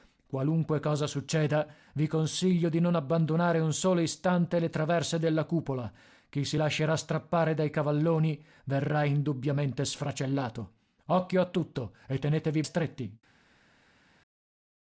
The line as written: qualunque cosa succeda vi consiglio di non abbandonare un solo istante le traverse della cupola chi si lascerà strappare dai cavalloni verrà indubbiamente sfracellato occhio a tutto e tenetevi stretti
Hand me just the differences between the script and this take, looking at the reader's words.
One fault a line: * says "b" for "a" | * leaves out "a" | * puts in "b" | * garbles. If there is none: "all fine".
all fine